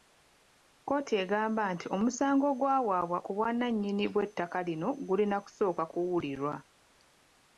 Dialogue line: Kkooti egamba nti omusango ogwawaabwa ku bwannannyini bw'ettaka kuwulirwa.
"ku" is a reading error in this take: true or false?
false